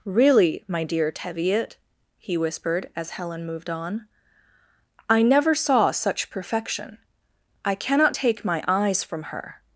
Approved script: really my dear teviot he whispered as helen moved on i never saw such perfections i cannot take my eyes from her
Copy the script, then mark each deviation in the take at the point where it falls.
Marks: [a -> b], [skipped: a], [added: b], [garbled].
really my dear teviot he whispered as helen moved on i never saw such [perfections -> perfection] i cannot take my eyes from her